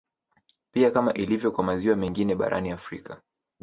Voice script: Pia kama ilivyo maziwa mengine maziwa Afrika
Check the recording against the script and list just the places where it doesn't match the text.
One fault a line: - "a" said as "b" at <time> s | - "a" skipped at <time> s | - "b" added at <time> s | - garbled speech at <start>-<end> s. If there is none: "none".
- "kwa" added at 1.5 s
- "maziwa" said as "barani" at 2.4 s